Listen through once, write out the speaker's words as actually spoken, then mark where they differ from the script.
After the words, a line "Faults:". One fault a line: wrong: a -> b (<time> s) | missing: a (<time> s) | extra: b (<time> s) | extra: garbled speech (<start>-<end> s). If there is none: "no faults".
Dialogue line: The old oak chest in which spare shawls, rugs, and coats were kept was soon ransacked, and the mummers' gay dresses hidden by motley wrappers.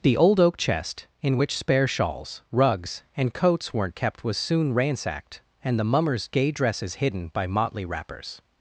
The old oak chest in which spare shawls, rugs, and coats weren't kept was soon ransacked, and the mummers' gay dresses hidden by motley wrappers.
Faults:
wrong: were -> weren't (3.7 s)